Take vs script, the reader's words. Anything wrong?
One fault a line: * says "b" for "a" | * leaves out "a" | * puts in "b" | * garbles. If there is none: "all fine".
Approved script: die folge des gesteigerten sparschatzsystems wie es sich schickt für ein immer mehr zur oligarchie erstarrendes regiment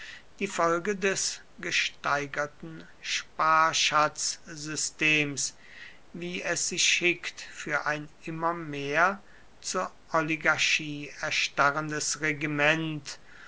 all fine